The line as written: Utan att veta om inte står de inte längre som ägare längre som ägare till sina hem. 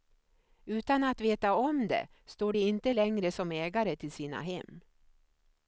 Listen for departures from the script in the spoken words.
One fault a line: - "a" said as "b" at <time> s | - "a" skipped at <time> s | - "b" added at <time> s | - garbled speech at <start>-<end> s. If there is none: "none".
- "inte" said as "det" at 1.9 s
- "längre som ägare" skipped at 4.0 s